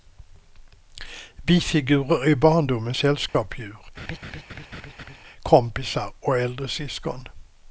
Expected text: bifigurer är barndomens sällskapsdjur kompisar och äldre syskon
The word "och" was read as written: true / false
true